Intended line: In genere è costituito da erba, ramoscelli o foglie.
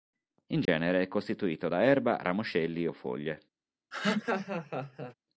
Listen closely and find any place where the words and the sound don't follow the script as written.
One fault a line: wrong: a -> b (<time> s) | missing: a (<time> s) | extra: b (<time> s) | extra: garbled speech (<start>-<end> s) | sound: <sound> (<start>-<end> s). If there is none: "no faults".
sound: dropout (0.7-0.7 s)
sound: laugh (3.9-5.1 s)